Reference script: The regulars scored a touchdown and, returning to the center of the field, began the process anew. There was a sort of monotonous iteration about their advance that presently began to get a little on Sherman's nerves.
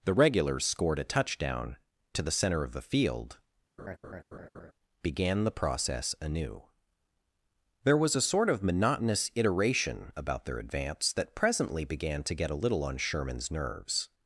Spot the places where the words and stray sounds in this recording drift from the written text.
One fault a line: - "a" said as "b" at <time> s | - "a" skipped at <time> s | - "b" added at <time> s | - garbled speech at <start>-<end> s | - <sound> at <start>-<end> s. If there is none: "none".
- "and returning" skipped at 1.8 s
- laugh at 3.8-4.7 s